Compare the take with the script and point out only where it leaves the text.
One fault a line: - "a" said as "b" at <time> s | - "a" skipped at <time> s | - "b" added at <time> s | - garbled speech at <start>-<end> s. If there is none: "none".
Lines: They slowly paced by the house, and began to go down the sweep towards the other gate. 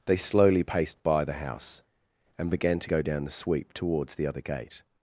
none